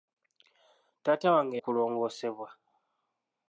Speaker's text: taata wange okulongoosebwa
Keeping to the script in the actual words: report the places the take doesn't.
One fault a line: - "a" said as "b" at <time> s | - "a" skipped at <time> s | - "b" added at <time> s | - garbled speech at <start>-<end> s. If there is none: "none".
none